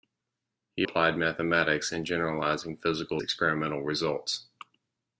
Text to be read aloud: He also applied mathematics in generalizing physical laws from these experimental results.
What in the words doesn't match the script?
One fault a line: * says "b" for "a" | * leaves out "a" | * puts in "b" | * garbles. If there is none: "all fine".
* leaves out "also"
* leaves out "laws from these"